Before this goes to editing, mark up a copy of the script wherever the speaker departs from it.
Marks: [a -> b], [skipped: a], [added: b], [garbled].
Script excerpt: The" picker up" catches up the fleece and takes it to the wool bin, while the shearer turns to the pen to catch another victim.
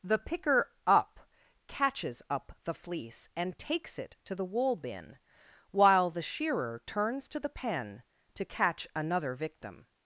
The" picker up" catches up the fleece and takes it to the wool bin, while the shearer turns to the pen to catch another victim.